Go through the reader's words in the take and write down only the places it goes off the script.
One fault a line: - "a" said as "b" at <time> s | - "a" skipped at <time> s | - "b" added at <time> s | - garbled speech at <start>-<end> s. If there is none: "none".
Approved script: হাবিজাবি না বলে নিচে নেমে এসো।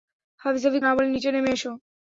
none